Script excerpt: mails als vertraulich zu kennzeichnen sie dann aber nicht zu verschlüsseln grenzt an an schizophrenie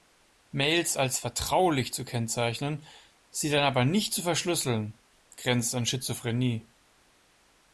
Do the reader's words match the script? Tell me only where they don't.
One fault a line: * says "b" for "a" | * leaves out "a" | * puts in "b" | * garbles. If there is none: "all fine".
* leaves out "an"